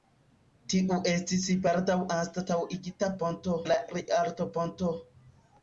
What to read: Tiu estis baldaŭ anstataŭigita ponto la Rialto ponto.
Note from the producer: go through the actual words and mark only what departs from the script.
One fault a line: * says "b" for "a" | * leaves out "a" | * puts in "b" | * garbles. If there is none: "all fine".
all fine